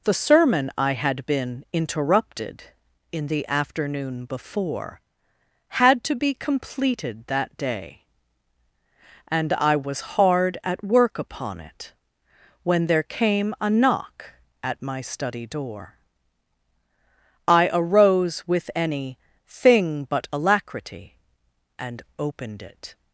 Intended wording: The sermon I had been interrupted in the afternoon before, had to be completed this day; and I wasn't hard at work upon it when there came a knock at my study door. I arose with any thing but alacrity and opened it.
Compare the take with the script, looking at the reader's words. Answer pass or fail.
fail